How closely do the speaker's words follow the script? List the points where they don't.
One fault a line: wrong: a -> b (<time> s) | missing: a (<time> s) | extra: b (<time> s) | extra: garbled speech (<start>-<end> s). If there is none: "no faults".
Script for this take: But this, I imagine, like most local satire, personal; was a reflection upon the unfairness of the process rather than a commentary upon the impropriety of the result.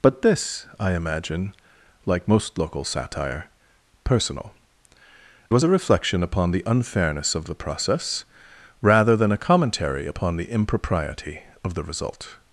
no faults